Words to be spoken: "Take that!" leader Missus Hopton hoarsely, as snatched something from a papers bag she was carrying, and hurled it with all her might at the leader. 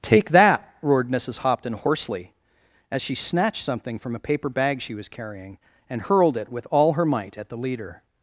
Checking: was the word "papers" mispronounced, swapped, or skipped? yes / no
yes